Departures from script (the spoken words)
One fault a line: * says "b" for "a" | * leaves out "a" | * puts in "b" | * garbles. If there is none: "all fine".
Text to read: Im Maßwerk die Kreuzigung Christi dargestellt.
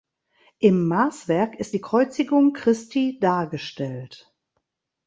* puts in "ist"